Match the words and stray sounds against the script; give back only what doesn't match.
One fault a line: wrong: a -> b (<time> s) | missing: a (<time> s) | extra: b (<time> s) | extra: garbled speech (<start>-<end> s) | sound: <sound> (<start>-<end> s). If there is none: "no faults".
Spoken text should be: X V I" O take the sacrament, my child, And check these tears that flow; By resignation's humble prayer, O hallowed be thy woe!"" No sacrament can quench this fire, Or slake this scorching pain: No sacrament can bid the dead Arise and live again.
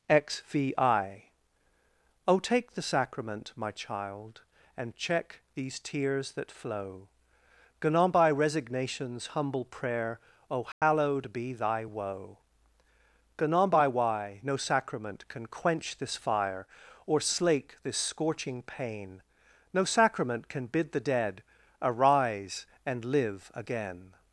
extra: gone on (7.8 s)
sound: dropout (10.7-10.8 s)
extra: gone on by why (13.4 s)